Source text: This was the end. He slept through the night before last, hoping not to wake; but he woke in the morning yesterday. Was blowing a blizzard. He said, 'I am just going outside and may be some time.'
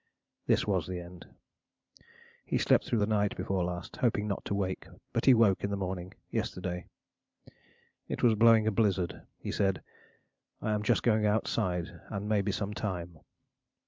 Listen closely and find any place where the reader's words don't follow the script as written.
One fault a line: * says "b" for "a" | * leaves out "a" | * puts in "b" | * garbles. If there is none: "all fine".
* puts in "It"